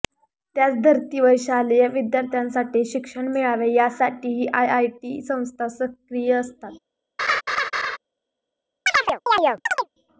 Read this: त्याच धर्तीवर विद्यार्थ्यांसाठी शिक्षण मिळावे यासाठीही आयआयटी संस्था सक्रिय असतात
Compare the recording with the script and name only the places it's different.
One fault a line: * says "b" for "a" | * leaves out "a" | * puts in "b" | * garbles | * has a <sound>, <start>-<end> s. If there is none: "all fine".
* puts in "शालेय"
* has a laugh, 7.2-8.0 s
* has a chirp, 8.9-9.9 s